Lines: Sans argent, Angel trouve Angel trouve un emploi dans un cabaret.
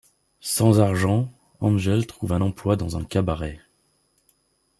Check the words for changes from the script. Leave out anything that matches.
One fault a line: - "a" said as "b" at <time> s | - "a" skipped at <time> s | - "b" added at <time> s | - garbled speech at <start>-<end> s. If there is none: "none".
- "Angel trouve" skipped at 2.3 s